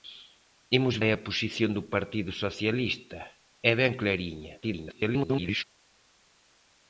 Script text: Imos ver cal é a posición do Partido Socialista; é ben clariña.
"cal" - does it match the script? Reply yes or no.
no